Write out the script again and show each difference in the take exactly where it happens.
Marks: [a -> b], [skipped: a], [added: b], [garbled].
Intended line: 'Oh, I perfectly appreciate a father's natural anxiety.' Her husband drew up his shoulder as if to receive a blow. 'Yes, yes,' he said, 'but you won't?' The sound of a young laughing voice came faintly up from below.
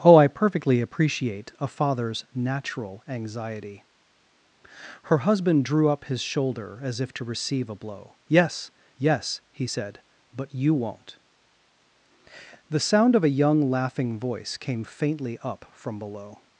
'Oh, I perfectly appreciate a father's natural anxiety.' Her husband drew up his shoulder as if to receive a blow. 'Yes, yes,' he said, 'but you won't?' The sound of a young laughing voice came faintly up from below.